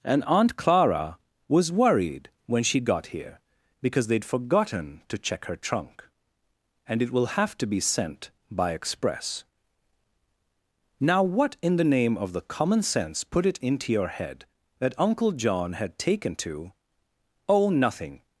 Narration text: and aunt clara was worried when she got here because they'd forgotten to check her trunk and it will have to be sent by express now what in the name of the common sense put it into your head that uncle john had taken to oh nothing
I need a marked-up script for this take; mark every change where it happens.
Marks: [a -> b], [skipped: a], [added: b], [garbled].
and aunt clara was worried when she got here because they'd forgotten to check her trunk and it will have to be sent by express now what in the name of the common sense put it into your head that uncle john had taken to oh nothing